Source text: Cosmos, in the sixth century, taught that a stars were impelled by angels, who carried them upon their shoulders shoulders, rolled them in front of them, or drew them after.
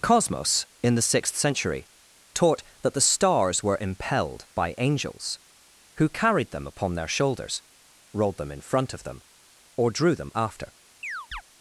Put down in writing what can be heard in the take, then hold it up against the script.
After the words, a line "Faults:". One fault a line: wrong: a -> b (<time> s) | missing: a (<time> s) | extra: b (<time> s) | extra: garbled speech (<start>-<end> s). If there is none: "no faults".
Cosmos, in the sixth century, taught that the stars were impelled by angels, who carried them upon their shoulders, rolled them in front of them, or drew them after.
Faults:
wrong: a -> the (3.0 s)
missing: shoulders (7.6 s)